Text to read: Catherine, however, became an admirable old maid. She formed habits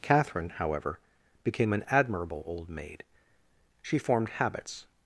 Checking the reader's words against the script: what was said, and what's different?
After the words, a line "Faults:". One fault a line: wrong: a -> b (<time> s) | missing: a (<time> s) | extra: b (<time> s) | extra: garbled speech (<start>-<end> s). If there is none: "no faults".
Catherine, however, became an admirable old maid. She formed habits
Faults:
no faults